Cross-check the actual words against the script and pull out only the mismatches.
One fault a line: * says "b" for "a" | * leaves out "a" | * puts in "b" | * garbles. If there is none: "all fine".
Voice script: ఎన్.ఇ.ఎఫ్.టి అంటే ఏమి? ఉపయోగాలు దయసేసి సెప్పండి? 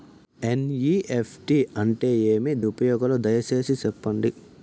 all fine